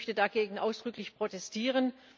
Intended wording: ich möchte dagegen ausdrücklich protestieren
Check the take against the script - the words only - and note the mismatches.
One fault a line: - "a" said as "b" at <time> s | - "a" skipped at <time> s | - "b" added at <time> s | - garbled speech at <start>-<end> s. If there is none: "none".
none